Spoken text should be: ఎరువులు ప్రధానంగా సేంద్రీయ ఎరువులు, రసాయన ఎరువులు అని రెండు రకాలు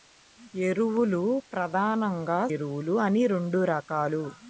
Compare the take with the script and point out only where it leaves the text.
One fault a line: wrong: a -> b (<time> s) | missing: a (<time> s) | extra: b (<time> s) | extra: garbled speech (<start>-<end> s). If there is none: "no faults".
missing: సేంద్రీయ ఎరువులు రసాయన (2.4 s)